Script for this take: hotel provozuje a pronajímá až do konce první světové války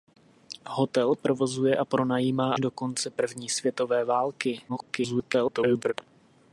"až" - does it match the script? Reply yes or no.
no